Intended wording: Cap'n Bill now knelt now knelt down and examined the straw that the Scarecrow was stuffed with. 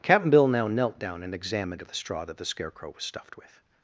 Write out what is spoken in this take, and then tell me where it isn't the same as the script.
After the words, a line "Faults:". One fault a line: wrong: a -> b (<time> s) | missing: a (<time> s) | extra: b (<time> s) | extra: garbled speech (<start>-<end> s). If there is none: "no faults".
Cap'n Bill now knelt down and examined the straw that the Scarecrow was stuffed with.
Faults:
missing: now knelt (1.0 s)